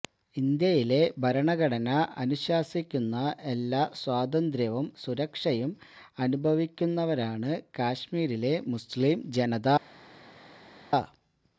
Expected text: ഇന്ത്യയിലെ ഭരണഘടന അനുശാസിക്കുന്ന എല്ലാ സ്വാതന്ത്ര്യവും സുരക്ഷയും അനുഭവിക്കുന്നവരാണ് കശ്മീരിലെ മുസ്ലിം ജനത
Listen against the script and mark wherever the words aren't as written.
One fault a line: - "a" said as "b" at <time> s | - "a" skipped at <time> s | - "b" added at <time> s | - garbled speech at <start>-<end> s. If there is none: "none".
none